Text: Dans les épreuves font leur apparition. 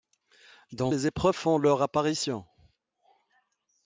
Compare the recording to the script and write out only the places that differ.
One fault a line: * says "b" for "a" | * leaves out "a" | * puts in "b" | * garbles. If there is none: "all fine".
all fine